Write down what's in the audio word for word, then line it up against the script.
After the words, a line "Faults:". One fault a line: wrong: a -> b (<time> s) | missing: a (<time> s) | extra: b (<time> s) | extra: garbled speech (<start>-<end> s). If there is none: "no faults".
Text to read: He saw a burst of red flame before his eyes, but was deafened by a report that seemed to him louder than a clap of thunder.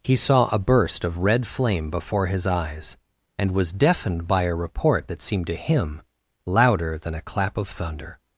He saw a burst of red flame before his eyes, and was deafened by a report that seemed to him louder than a clap of thunder.
Faults:
wrong: but -> and (3.4 s)